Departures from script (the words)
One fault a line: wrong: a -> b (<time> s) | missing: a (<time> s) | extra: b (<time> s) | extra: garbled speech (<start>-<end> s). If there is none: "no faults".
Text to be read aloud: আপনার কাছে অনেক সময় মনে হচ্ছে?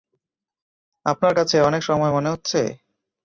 no faults